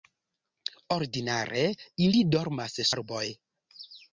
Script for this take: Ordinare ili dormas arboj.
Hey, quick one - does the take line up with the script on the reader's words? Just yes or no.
yes